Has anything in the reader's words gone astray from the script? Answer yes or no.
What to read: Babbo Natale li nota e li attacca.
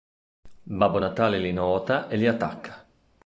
no